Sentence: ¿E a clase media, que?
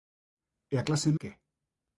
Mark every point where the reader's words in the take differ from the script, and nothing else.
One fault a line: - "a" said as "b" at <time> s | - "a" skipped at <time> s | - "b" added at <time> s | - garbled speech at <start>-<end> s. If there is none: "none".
- "media" skipped at 1.1 s